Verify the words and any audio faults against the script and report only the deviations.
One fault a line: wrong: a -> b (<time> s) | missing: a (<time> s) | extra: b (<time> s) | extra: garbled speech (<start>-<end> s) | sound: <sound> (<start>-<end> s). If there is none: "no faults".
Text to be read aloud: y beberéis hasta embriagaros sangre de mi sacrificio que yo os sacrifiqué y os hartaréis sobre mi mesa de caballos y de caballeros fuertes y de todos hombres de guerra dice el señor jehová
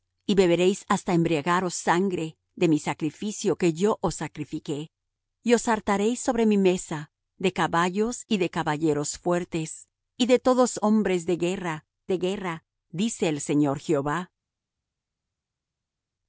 extra: de guerra (12.1 s)